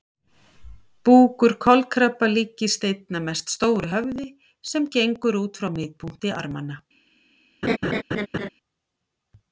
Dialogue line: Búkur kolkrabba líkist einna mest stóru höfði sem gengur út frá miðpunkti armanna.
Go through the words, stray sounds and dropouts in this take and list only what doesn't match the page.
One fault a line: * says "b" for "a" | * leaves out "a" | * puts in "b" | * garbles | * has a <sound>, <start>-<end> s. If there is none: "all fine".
* has a laugh, 7.6-8.5 s